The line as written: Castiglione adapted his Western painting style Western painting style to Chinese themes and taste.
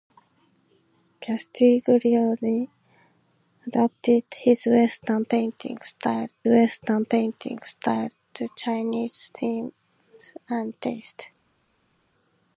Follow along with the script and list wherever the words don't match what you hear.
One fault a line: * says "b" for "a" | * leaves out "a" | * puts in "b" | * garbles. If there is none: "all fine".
all fine